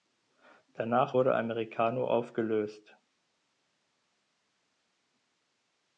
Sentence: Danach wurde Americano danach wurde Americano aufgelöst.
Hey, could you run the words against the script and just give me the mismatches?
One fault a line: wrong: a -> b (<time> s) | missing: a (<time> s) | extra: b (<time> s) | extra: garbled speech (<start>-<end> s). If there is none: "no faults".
missing: danach wurde Americano (2.0 s)